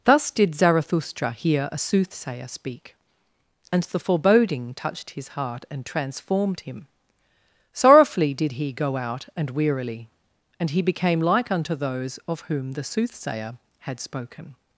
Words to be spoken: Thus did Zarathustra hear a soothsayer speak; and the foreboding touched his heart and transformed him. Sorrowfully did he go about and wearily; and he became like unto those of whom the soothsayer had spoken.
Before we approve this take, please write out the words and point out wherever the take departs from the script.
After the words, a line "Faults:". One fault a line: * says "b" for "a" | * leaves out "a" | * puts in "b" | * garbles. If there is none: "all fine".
Thus did Zarathustra hear a soothsayer speak; and the foreboding touched his heart and transformed him. Sorrowfully did he go out and wearily; and he became like unto those of whom the soothsayer had spoken.
Faults:
* says "out" for "about"